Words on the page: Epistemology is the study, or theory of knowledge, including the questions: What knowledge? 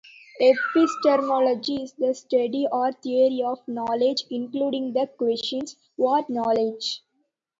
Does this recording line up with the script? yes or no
yes